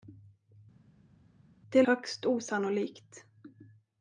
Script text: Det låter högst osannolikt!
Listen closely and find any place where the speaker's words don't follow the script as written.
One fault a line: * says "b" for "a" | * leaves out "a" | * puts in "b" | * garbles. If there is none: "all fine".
* leaves out "låter"